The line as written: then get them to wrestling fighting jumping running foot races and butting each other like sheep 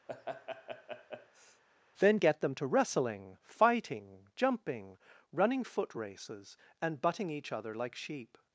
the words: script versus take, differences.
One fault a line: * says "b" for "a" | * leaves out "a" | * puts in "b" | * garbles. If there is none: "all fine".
all fine